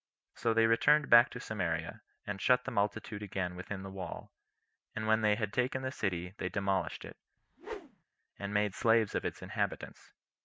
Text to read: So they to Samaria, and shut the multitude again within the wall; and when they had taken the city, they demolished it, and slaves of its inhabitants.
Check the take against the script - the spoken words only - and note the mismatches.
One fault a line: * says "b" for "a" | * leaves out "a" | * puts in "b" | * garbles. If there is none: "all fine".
* puts in "returned back"
* puts in "made"